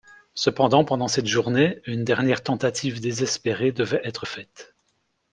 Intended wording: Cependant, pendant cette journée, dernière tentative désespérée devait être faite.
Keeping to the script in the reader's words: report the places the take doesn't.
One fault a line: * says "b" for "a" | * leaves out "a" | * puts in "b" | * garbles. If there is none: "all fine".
* puts in "une"